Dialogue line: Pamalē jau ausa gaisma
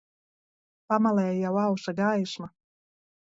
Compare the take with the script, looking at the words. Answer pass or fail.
pass